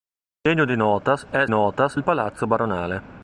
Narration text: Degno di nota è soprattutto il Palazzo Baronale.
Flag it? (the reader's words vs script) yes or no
yes